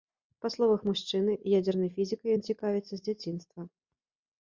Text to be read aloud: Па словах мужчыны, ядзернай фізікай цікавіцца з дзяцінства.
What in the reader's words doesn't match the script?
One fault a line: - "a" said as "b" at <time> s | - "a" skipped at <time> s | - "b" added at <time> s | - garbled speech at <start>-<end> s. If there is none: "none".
- "ён" added at 2.4 s